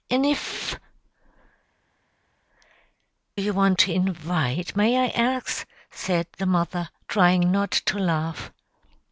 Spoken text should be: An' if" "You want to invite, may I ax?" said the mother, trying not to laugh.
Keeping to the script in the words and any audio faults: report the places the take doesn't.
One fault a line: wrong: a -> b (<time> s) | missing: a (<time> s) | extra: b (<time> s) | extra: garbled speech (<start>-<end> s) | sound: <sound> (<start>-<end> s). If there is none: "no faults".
no faults